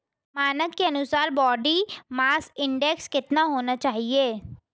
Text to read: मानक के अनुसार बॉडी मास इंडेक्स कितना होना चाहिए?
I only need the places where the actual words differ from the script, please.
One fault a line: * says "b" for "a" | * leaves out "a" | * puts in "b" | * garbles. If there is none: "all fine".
all fine